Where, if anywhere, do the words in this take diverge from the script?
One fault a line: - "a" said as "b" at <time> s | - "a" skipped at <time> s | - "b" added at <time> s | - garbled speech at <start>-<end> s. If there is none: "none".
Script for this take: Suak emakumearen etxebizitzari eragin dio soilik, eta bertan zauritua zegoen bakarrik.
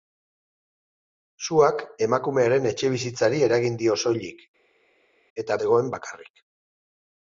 - "bertan zauritua" skipped at 5.6 s